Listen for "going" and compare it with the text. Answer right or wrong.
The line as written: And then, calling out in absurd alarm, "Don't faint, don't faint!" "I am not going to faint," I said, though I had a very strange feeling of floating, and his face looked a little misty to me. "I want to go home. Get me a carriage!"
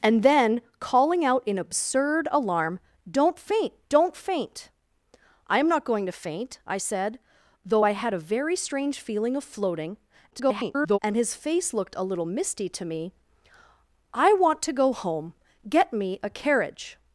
right